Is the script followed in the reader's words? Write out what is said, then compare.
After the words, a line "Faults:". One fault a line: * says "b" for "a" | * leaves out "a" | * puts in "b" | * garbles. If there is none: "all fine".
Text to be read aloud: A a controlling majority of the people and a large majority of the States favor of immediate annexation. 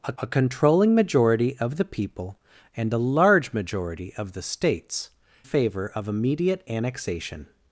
A a controlling majority of the people and a large majority of the States favor of immediate annexation.
Faults:
all fine